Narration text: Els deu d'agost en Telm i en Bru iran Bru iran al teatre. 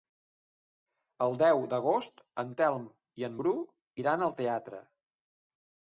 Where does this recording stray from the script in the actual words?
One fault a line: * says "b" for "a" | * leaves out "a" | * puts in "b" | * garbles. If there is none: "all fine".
* says "El" for "Els"
* leaves out "Bru iran"